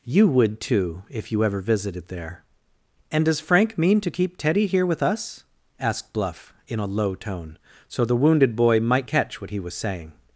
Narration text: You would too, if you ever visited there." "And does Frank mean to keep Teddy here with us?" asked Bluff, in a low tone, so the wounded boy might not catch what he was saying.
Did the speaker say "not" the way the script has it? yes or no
no